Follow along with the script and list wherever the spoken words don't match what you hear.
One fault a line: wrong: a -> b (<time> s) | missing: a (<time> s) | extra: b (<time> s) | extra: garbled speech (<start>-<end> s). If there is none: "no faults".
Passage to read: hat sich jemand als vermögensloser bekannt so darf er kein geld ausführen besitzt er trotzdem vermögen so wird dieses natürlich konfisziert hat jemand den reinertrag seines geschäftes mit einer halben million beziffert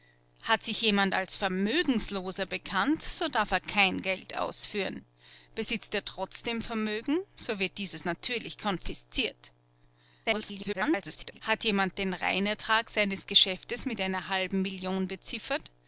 extra: garbled speech (10.2-11.4 s)